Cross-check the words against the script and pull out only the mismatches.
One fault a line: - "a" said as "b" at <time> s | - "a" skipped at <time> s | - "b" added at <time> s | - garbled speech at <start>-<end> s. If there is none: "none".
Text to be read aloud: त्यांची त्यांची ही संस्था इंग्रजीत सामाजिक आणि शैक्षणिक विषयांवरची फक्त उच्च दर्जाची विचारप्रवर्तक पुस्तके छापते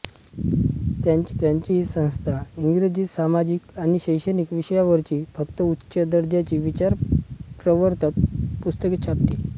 none